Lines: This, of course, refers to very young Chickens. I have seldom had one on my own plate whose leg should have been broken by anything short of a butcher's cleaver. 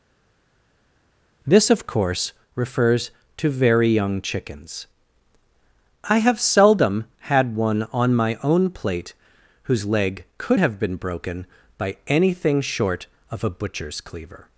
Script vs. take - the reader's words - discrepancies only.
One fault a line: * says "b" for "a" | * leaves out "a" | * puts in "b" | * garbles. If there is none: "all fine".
* says "could" for "should"